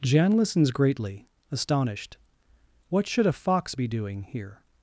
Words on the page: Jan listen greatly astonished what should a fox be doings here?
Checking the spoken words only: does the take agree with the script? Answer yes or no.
no